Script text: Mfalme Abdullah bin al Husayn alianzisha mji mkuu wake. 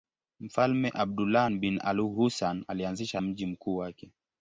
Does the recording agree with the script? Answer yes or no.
yes